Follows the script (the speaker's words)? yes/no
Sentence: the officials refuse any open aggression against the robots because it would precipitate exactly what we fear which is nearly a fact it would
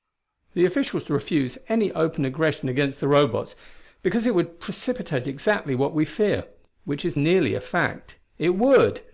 yes